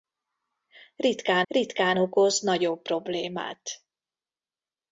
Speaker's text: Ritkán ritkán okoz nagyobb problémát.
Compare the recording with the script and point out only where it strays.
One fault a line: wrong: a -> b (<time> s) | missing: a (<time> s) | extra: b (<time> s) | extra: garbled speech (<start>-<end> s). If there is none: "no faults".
no faults